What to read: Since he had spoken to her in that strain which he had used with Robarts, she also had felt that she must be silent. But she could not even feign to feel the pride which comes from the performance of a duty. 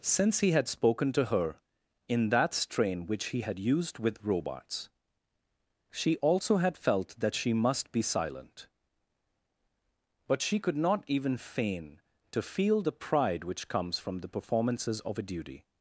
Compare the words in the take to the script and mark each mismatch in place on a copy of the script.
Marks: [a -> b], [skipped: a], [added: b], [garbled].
Since he had spoken to her in that strain which he had used with Robarts, she also had felt that she must be silent. But she could not even feign to feel the pride which comes from the [performance -> performances] of a duty.